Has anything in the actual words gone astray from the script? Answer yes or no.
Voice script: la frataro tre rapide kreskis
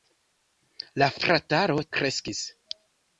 yes